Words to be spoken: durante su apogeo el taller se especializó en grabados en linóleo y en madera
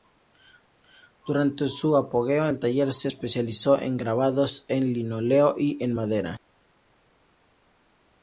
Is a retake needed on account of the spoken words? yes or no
no